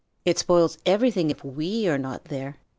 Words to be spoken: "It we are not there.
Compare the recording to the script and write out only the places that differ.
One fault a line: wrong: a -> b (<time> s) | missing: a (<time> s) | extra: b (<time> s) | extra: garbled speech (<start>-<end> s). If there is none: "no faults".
extra: spoils everything if (0.4 s)